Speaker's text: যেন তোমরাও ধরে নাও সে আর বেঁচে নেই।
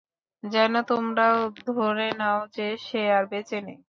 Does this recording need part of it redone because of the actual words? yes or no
yes